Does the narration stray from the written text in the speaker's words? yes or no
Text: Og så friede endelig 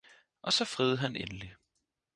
yes